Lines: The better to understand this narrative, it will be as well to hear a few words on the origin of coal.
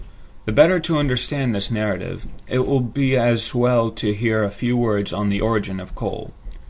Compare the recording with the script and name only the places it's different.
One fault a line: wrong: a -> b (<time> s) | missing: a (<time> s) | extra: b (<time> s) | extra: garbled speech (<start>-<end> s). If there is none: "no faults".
no faults